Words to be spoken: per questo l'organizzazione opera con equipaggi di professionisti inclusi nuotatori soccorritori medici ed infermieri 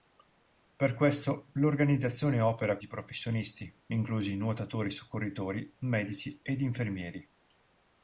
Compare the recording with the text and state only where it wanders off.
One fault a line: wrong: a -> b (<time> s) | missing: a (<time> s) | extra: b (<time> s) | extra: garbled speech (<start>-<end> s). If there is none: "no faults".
missing: con equipaggi (2.8 s)